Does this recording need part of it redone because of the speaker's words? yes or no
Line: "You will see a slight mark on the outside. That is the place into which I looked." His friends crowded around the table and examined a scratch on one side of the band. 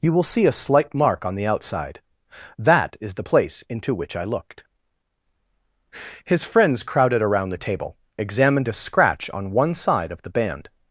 yes